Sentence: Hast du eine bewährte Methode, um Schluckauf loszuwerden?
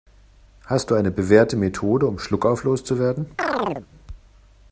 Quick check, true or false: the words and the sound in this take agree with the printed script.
false